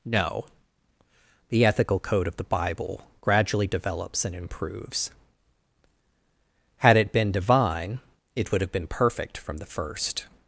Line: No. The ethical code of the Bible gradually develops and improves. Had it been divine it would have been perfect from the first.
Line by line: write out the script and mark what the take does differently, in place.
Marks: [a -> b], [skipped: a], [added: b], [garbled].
No. The ethical code of the Bible gradually develops and improves. Had it been divine it would have been perfect from the first.